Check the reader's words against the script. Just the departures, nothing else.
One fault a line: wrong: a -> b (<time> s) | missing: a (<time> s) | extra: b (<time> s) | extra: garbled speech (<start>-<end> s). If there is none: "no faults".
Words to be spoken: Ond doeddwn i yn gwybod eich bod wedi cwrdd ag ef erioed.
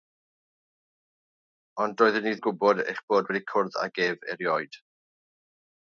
no faults